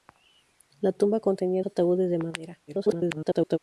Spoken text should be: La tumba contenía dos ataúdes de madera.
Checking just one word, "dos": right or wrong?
wrong